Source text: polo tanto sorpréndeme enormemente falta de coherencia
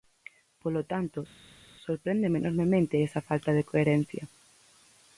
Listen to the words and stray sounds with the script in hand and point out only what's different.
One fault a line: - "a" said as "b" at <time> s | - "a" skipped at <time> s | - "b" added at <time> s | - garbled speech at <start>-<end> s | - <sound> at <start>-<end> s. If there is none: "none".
- "esa" added at 3.1 s